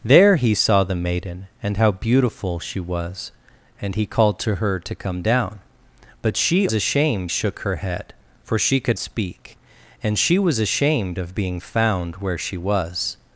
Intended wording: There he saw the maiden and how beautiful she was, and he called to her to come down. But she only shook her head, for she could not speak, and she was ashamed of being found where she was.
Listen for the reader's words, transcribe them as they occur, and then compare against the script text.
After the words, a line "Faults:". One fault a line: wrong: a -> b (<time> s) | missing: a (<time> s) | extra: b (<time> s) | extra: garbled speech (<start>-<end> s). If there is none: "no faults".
There he saw the maiden and how beautiful she was, and he called to her to come down. But she ashamed shook her head, for she could speak, and she was ashamed of being found where she was.
Faults:
wrong: only -> ashamed (6.7 s)
missing: not (9.0 s)